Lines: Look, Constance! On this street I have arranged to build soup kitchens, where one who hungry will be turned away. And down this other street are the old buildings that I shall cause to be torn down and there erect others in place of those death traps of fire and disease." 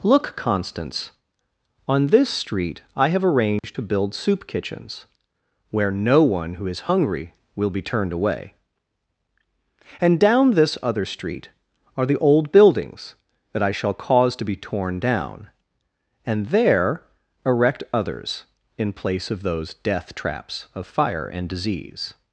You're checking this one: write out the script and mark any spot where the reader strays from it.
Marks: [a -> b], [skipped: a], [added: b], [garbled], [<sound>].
Look, Constance! On this street I have arranged [dropout] to build soup kitchens, where [added: no] one who [added: is] hungry will be turned away. And down this other street are the old buildings that I shall cause to be torn down and there erect others in place of those death traps of fire and disease."